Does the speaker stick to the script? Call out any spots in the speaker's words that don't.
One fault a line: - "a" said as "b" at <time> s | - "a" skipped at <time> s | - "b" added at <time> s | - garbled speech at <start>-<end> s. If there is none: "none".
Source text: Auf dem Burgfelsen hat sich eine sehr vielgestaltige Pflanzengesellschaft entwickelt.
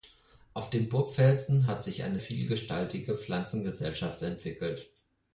- "sehr" skipped at 2.2 s